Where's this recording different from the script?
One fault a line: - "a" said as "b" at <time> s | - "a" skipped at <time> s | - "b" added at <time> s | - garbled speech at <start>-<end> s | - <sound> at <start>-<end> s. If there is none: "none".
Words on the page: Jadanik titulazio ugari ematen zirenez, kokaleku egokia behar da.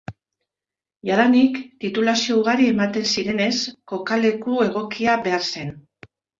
- "da" said as "zen" at 5.5 s